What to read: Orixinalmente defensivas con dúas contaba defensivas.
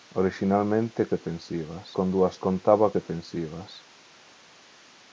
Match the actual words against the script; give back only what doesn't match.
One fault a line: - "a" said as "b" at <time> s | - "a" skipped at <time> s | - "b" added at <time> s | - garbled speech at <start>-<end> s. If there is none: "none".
none